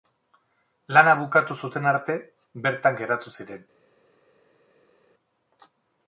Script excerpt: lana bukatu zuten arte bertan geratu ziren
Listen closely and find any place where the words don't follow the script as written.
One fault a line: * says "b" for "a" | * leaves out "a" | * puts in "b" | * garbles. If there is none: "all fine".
all fine